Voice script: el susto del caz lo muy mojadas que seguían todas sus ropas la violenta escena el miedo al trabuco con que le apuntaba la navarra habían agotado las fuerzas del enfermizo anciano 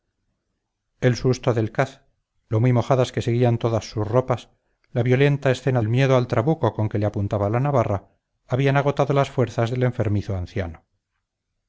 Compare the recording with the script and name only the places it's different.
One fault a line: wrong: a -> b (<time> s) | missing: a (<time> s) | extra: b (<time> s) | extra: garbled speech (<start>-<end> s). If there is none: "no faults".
no faults